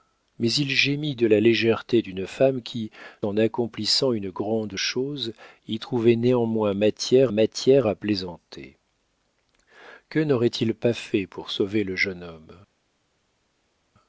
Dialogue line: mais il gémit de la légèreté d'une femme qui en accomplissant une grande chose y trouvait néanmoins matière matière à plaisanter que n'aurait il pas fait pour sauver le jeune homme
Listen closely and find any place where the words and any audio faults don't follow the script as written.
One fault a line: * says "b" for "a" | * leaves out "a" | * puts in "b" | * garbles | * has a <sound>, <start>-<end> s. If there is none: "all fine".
all fine